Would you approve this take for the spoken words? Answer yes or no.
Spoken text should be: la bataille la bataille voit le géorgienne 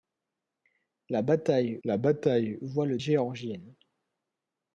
yes